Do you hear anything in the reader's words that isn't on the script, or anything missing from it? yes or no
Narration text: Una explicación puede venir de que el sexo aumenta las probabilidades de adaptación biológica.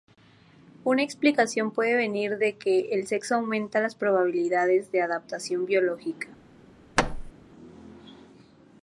no